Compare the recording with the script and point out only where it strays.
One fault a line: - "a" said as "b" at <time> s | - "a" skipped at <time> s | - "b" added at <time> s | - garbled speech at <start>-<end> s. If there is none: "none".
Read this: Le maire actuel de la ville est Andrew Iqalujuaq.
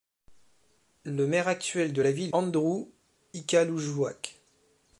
- "est" skipped at 2.3 s